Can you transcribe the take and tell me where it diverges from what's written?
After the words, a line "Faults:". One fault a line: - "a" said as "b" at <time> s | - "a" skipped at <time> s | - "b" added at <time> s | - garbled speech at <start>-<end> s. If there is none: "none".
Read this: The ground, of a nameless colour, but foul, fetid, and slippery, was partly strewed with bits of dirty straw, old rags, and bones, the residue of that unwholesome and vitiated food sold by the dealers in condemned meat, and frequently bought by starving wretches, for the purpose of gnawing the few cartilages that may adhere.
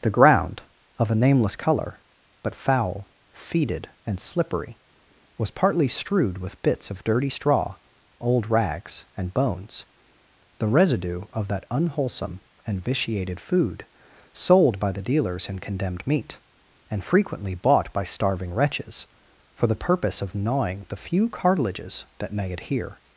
The ground, of a nameless colour, but foul, fetid, and slippery, was partly strewed with bits of dirty straw, old rags, and bones, the residue of that unwholesome and vitiated food sold by the dealers in condemned meat, and frequently bought by starving wretches, for the purpose of gnawing the few cartilages that may adhere.
Faults:
none